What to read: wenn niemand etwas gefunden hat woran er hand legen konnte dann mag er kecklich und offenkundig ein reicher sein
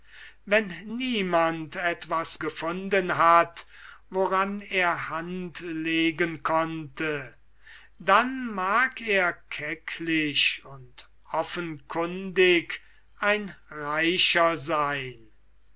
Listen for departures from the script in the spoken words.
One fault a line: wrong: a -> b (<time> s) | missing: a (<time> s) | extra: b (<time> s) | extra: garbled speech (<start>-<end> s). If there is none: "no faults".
no faults